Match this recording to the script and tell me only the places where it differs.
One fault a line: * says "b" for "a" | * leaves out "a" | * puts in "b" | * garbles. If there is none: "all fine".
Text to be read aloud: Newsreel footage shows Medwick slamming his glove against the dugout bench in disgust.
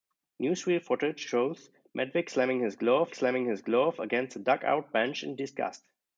* puts in "slamming his glove"